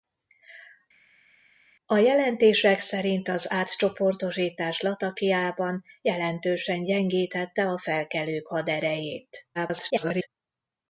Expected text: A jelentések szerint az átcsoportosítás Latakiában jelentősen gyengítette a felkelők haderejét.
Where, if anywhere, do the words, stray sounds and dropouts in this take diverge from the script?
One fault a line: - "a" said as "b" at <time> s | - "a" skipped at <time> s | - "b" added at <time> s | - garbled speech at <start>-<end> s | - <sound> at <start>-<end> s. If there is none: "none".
- garbled speech at 9.5-10.3 s